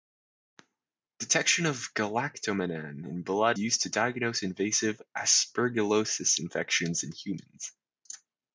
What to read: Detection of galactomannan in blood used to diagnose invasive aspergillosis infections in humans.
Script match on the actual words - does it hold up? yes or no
yes